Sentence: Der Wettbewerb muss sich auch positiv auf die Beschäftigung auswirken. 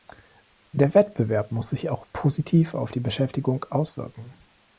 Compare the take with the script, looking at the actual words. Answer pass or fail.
pass